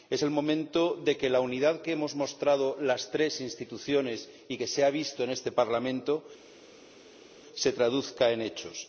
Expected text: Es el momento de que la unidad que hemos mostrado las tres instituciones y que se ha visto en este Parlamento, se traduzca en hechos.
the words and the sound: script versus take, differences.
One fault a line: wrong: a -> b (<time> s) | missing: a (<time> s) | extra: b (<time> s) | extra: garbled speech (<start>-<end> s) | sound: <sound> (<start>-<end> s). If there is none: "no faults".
no faults